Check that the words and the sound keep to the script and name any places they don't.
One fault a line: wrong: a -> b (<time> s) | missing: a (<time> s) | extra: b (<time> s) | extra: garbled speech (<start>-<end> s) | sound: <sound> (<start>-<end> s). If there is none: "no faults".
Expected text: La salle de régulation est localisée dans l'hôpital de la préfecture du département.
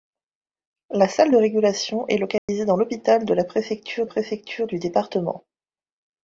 sound: dropout (2.4-2.5 s)
extra: préfecture (4.0 s)